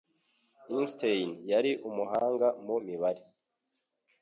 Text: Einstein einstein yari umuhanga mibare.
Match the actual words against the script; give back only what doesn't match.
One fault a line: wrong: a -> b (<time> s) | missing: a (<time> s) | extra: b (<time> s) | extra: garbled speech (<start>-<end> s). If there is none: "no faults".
missing: einstein (1.3 s)
extra: mu (2.6 s)